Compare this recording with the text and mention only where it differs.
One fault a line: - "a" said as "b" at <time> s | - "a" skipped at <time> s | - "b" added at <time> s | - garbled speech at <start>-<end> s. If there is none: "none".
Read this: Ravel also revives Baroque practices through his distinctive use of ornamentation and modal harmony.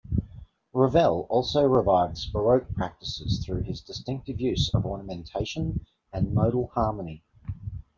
none